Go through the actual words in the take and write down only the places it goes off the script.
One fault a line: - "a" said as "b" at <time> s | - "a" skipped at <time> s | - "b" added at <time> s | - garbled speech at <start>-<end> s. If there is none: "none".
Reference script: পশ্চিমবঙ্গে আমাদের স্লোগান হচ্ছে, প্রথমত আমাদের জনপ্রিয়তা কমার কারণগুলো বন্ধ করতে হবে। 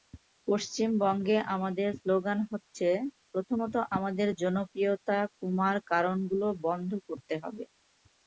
none